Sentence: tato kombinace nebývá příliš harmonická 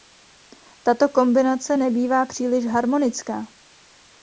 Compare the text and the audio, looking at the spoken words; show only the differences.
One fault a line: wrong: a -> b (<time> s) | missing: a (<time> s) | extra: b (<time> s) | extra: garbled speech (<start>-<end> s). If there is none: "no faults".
no faults